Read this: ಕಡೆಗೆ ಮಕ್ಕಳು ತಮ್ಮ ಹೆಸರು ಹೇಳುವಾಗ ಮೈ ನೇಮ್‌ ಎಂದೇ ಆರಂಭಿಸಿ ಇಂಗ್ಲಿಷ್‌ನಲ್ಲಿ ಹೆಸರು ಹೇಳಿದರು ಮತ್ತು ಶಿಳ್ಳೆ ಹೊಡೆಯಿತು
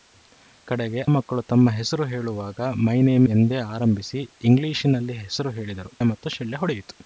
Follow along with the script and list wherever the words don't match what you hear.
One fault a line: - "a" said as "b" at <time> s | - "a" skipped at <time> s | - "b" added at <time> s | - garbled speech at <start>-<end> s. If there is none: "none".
none